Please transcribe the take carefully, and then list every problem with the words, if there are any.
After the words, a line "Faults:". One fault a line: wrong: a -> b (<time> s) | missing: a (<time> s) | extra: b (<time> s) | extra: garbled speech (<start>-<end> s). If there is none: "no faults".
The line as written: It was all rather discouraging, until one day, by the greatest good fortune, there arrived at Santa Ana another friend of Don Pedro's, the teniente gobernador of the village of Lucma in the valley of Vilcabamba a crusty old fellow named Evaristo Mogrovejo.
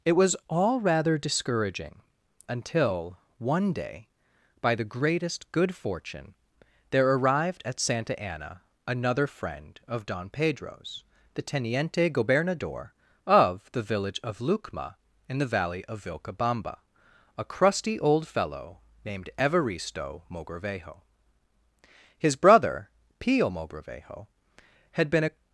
It was all rather discouraging, until one day, by the greatest good fortune, there arrived at Santa Ana another friend of Don Pedro's, the teniente gobernador of the village of Lucma in the valley of Vilcabamba a crusty old fellow named Evaristo Mogrovejo. His brother, Pio Mogrovejo, had been a
Faults:
extra: His brother Pio Mogrovejo had been a (22.2 s)